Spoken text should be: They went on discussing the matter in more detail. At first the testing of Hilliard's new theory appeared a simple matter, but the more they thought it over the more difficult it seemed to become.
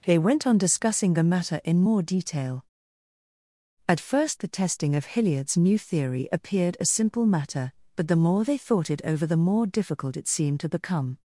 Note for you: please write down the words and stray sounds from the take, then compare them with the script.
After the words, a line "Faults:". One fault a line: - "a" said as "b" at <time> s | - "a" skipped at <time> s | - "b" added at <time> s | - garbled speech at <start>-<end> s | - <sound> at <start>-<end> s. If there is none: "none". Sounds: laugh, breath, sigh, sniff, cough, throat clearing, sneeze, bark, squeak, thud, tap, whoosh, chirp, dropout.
They went on discussing the matter in more detail. At first the testing of Hilliard's new theory appeared a simple matter, but the more they thought it over the more difficult it seemed to become.
Faults:
none